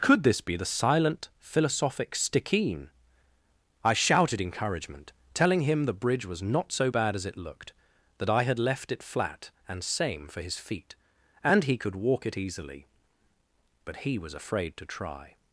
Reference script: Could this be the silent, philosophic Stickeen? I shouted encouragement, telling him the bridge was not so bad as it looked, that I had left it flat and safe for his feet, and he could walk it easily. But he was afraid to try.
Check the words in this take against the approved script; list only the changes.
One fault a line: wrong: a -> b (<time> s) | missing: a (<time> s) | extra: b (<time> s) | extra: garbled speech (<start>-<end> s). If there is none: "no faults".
wrong: safe -> same (9.8 s)